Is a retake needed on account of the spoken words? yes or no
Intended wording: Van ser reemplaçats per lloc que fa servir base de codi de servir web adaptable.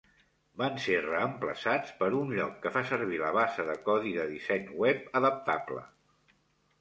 yes